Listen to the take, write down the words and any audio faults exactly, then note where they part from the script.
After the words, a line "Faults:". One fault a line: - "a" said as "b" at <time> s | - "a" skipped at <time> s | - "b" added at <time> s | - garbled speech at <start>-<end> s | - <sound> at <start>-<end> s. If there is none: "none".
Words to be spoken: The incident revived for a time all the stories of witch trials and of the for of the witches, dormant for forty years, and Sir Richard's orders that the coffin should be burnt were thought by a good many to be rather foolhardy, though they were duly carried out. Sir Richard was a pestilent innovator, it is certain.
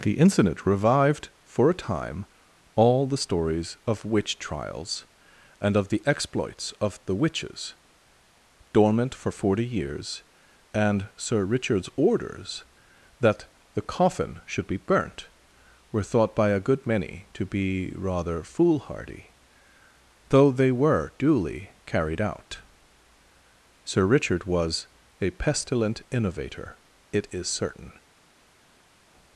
The incident revived for a time all the stories of witch trials and of the exploits of the witches, dormant for forty years, and Sir Richard's orders that the coffin should be burnt were thought by a good many to be rather foolhardy, though they were duly carried out. Sir Richard was a pestilent innovator, it is certain.
Faults:
- "for" said as "exploits" at 6.1 s